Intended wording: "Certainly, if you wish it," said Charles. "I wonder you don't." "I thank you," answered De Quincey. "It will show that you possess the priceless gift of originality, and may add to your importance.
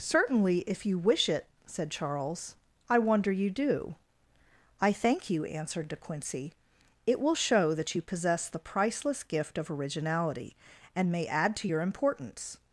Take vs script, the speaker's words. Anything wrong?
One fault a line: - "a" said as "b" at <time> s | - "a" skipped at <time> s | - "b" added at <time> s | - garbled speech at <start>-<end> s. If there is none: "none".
- "don't" said as "do" at 3.5 s